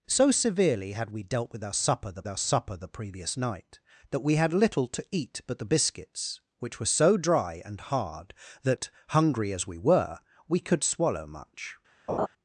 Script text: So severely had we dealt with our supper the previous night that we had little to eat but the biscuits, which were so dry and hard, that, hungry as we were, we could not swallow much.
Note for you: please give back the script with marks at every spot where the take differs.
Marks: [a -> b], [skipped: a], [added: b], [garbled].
So severely had we dealt with our supper the [added: our supper the] previous night that we had little to eat but the biscuits, which were so dry and hard, that, hungry as we were, we could [skipped: not] swallow much.